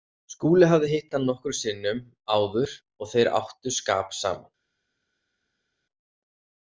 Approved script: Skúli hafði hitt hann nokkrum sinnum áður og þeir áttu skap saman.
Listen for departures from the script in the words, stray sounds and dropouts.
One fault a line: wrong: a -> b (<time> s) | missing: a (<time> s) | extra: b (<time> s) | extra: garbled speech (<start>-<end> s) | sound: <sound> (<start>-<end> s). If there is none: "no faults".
no faults